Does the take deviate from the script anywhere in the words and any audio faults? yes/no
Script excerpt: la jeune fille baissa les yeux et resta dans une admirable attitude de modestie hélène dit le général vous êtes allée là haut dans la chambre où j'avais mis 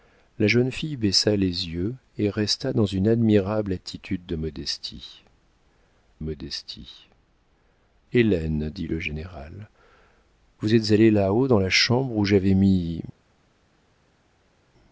yes